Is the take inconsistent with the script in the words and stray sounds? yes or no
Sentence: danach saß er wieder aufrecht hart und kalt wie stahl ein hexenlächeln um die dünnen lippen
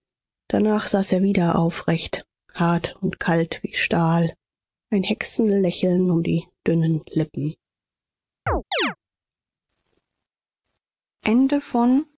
yes